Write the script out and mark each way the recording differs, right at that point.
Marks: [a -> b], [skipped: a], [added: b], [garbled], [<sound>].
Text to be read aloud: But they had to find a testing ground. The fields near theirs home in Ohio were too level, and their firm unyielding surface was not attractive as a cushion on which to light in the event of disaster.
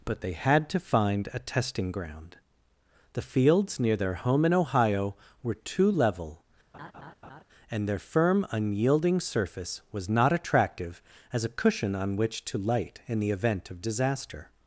But they had to find a testing ground. The fields near [theirs -> their] home in Ohio were too level, [laugh] and their firm unyielding surface was not attractive as a cushion on which to light in the event of disaster.